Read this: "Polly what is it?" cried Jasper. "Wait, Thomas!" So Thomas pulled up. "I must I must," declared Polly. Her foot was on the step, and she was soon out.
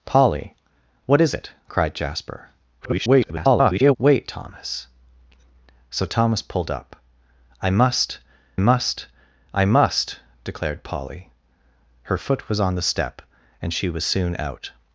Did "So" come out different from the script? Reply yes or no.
no